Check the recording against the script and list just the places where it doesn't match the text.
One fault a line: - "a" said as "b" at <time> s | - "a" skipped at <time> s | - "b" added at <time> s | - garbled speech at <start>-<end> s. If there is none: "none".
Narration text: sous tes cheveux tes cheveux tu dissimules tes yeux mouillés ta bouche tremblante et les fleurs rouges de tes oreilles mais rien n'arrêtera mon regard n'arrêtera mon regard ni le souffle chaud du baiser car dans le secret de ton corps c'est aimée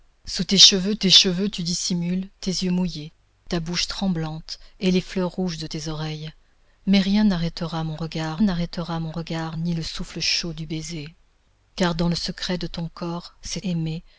none